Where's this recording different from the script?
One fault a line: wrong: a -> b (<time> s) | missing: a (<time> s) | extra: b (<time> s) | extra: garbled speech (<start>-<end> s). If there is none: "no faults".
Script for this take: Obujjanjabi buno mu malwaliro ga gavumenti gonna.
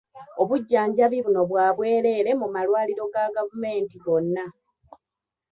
extra: bwa bwereere (1.5 s)